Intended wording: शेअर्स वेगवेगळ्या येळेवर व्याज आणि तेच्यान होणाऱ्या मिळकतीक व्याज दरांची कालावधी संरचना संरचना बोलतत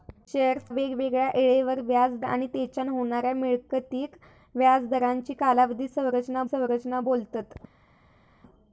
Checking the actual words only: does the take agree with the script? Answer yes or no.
yes